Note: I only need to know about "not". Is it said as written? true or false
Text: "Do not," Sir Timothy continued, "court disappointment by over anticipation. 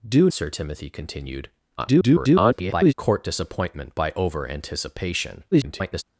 false